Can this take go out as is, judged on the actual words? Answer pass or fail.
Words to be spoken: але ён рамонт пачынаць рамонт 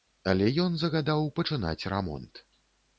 fail